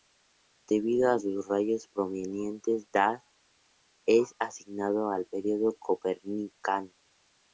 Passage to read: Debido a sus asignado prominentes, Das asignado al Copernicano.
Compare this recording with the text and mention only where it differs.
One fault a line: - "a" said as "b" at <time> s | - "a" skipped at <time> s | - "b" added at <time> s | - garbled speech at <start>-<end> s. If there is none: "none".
- "asignado" said as "rayos" at 1.5 s
- "es" added at 4.1 s
- "Período" added at 5.3 s